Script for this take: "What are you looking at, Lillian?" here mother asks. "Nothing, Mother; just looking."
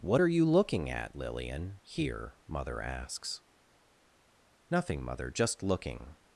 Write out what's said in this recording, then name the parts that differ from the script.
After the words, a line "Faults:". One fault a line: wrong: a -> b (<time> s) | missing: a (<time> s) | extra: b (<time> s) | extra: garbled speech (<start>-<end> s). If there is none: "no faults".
"What are you looking at, Lillian?" here mother asks. "Nothing, Mother; just looking."
Faults:
no faults